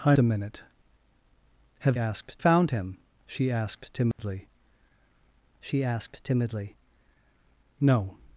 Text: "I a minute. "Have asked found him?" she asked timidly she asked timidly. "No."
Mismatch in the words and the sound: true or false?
true